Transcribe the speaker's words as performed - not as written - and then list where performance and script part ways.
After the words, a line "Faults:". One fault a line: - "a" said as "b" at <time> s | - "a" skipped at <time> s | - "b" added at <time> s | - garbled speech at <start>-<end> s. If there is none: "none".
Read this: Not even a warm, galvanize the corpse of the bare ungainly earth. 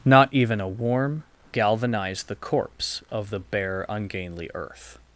Not even a warm, galvanize the corpse of the bare ungainly earth.
Faults:
none